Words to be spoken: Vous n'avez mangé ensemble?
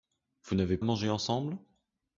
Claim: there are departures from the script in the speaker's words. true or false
false